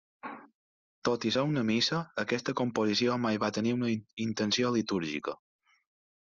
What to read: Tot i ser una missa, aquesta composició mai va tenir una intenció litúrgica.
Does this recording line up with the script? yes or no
yes